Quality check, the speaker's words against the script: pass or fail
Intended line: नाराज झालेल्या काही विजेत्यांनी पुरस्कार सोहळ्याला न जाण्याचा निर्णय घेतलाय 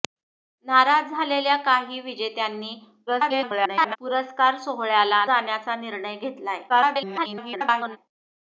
fail